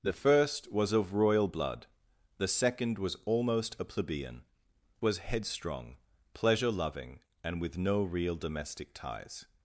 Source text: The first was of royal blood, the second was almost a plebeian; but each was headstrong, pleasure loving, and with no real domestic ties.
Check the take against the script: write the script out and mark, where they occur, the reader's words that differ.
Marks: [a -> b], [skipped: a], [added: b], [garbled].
The first was of royal blood, the second was almost a plebeian; [skipped: but each] was headstrong, pleasure loving, and with no real domestic ties.